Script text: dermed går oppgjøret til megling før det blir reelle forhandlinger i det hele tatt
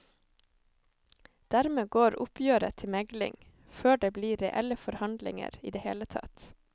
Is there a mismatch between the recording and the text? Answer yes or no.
no